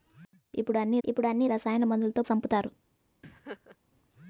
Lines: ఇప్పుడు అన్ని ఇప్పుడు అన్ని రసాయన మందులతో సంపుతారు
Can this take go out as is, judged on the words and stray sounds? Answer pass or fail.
fail